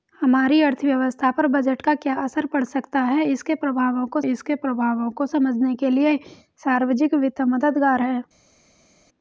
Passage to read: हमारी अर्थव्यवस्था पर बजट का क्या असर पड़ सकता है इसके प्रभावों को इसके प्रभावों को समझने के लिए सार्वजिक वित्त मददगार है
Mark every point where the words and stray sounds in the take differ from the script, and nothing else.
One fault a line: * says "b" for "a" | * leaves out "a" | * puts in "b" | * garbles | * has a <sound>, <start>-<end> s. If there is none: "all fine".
all fine